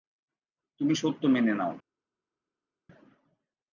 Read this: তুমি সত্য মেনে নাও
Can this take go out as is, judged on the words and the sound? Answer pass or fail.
pass